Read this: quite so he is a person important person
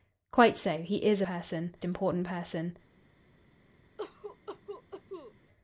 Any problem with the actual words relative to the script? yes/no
no